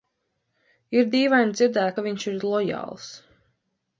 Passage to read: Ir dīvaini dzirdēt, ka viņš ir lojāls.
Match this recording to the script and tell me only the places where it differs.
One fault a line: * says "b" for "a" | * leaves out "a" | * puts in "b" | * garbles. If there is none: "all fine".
all fine